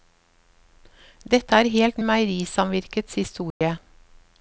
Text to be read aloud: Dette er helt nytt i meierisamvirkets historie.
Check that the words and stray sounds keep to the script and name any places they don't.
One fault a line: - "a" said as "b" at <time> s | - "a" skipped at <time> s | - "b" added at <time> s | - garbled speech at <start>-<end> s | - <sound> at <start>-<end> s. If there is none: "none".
- "nytt" skipped at 2.0 s
- dropout at 3.5-3.6 s